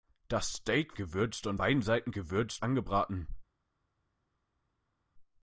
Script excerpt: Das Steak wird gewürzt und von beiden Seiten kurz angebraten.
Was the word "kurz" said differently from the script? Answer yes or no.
yes